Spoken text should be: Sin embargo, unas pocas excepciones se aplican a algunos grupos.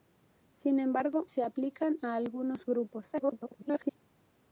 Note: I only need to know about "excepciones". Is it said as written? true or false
false